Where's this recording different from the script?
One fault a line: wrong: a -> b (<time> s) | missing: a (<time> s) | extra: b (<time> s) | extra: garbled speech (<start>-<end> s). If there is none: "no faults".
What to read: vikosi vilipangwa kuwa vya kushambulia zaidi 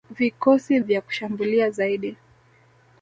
missing: vilipangwa kuwa (0.8 s)